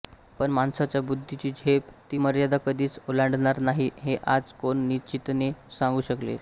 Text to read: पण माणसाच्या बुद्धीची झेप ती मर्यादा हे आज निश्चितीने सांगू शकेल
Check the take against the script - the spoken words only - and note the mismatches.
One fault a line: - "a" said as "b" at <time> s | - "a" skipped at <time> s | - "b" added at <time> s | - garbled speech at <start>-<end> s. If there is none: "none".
- "कधीच ओलांडणार नाही" added at 2.7 s
- "कोण" added at 4.6 s